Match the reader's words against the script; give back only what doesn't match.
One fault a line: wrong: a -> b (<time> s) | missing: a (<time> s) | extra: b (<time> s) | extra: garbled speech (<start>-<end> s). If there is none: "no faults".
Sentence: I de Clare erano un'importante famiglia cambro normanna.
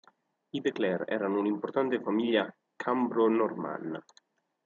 no faults